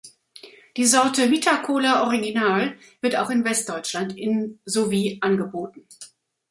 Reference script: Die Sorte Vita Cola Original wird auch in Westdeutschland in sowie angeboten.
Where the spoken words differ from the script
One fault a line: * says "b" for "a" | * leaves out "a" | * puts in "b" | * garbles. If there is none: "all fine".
all fine